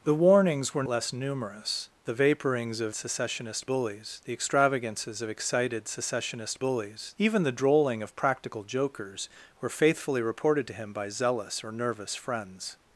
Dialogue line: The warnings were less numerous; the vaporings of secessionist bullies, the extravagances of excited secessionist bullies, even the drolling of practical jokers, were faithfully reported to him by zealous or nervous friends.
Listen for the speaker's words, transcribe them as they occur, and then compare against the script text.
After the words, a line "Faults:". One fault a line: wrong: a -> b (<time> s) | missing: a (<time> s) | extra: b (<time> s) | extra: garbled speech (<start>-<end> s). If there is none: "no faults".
The warnings were less numerous; the vaporings of secessionist bullies, the extravagances of excited secessionist bullies, even the drolling of practical jokers, were faithfully reported to him by zealous or nervous friends.
Faults:
no faults